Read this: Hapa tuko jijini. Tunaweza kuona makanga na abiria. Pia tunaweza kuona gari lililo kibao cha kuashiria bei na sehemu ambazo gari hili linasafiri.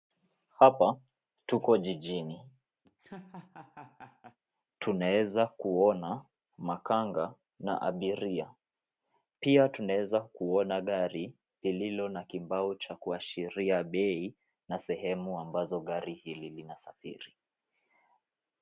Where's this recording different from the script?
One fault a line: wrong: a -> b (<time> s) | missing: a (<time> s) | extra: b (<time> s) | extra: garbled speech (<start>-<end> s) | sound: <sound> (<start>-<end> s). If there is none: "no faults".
sound: laugh (2.8-4.4 s)
extra: na (12.1 s)